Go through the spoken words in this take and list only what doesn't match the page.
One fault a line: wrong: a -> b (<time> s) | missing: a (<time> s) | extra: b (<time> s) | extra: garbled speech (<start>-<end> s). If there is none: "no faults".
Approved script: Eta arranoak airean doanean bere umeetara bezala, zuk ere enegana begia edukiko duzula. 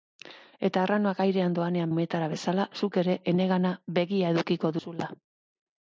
missing: bere (1.9 s)